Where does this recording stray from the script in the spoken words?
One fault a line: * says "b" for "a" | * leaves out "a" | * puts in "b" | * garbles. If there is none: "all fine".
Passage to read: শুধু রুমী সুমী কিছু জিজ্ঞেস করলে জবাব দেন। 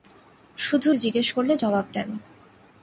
* leaves out "রুমী সুমী কিছু"